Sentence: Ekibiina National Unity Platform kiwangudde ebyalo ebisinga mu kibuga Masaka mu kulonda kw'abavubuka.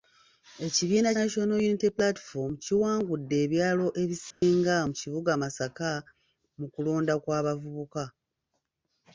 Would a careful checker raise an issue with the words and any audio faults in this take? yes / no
yes